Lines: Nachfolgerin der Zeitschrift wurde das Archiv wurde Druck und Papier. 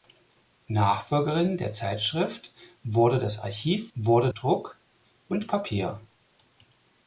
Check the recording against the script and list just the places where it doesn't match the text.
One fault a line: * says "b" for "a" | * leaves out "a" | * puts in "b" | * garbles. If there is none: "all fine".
all fine